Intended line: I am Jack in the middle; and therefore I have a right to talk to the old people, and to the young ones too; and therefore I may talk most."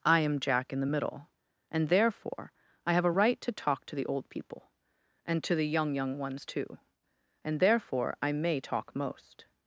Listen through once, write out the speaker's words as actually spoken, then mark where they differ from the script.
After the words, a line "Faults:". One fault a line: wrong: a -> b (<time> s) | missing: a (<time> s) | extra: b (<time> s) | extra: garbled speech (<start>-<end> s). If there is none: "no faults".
I am Jack in the middle; and therefore I have a right to talk to the old people, and to the young young ones too; and therefore I may talk most."
Faults:
extra: young (6.0 s)